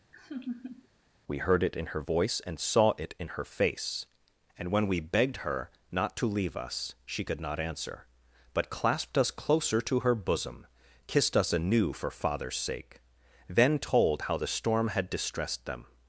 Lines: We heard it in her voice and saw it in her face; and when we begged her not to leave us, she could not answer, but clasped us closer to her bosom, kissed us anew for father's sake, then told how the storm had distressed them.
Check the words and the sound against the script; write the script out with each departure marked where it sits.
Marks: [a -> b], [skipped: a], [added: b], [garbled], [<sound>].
[laugh] We heard it in her voice and saw it in her face; and when we begged her not to leave us, she could not answer, but clasped us closer to her bosom, kissed us anew for father's sake, then told how the storm had distressed them.